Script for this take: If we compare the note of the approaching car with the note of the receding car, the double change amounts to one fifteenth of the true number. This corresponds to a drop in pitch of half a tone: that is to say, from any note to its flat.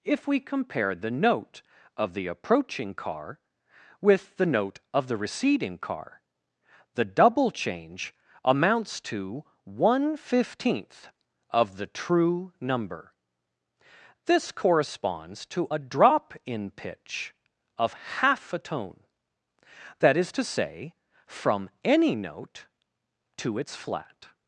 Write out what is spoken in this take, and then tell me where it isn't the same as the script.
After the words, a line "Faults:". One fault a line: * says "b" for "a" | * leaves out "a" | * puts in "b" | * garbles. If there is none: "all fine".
If we compare the note of the approaching car with the note of the receding car, the double change amounts to one fifteenth of the true number. This corresponds to a drop in pitch of half a tone: that is to say, from any note to its flat.
Faults:
all fine